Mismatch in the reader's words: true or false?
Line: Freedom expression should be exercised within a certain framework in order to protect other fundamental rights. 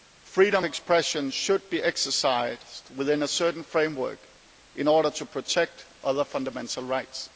false